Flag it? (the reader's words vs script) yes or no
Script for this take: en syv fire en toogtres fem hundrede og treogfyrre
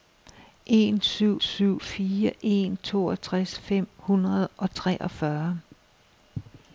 yes